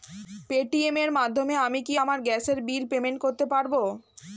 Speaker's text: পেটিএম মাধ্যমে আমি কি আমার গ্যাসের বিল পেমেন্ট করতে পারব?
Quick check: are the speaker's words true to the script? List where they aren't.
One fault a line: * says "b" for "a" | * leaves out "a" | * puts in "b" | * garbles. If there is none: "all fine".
* puts in "এর"